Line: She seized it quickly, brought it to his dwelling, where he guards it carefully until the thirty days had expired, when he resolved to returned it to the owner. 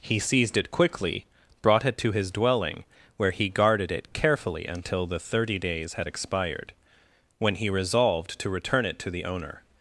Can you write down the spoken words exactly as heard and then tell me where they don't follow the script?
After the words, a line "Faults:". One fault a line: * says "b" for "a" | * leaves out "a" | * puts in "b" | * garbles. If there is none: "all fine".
He seized it quickly, brought it to his dwelling, where he guarded it carefully until the thirty days had expired, when he resolved to return it to the owner.
Faults:
* says "He" for "She"
* says "guarded" for "guards"
* says "return" for "returned"